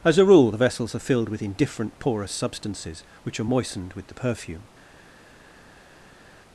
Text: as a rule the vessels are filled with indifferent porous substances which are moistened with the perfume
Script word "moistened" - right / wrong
right